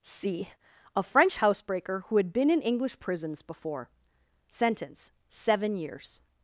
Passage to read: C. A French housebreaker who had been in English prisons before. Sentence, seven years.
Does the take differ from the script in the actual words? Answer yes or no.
no